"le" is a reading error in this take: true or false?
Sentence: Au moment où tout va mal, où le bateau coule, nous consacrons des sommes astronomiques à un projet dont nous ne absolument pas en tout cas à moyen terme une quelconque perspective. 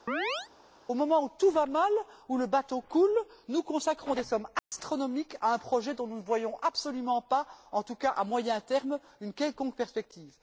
false